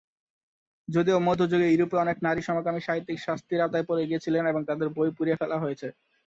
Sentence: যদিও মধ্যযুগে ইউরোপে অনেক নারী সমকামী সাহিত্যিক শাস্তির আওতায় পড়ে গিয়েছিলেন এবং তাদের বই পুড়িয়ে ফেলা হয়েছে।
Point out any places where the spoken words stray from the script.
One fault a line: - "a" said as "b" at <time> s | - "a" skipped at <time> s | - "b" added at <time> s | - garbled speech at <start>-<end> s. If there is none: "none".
none